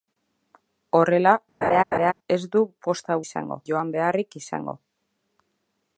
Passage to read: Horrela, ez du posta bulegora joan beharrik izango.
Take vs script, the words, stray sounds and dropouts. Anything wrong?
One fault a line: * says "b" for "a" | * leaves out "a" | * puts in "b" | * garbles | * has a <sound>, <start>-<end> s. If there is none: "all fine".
* has a laugh, 1.6-2.1 s
* says "izango" for "bulegora"